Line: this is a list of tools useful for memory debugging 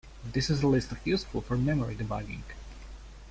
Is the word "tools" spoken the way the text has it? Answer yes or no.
no